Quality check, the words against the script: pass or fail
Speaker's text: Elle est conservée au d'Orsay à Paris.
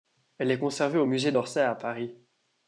fail